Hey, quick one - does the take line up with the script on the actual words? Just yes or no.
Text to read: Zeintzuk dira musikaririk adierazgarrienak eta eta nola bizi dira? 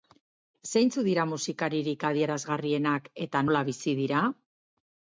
no